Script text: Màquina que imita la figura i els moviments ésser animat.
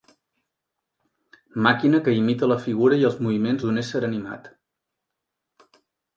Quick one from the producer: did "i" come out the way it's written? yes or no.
yes